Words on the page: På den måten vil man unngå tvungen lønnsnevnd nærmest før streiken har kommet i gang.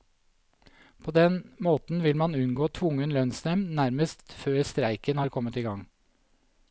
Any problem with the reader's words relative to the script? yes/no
no